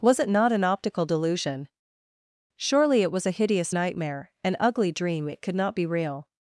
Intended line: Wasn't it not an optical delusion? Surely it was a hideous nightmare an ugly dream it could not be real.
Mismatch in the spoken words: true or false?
true